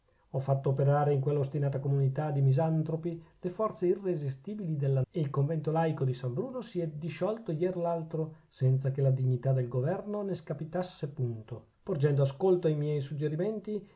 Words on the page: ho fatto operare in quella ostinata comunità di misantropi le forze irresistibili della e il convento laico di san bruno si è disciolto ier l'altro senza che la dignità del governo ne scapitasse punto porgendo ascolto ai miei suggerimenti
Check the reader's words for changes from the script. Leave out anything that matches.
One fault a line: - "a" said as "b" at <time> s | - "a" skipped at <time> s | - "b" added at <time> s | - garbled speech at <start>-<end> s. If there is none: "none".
none